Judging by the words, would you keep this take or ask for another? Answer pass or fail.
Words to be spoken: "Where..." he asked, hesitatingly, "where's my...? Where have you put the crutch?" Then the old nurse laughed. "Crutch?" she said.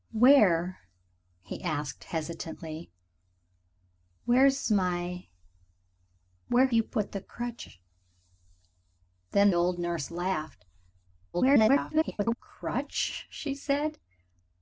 fail